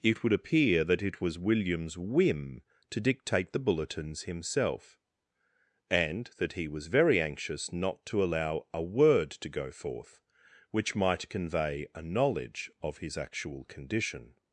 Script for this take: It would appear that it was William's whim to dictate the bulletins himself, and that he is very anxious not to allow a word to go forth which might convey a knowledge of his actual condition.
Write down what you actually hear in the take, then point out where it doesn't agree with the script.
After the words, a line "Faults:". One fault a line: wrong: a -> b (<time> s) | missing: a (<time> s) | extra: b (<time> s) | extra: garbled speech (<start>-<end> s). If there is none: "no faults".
It would appear that it was William's whim to dictate the bulletins himself, and that he was very anxious not to allow a word to go forth which might convey a knowledge of his actual condition.
Faults:
wrong: is -> was (6.7 s)